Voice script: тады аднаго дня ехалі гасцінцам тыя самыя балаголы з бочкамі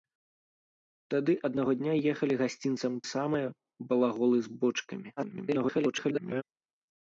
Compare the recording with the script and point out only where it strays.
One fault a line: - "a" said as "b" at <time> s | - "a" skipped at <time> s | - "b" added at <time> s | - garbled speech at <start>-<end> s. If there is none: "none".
- "тыя" skipped at 2.9 s
- garbled speech at 5.2-6.4 s